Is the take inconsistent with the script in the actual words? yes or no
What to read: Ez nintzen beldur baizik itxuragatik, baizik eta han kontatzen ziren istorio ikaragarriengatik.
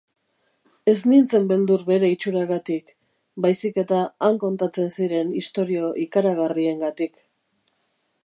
yes